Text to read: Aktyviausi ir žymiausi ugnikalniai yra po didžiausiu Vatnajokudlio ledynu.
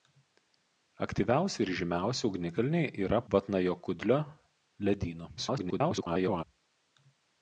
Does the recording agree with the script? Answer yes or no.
no